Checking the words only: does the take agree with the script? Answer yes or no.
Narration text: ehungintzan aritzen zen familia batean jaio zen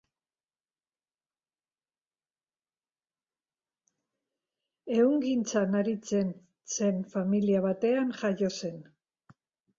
yes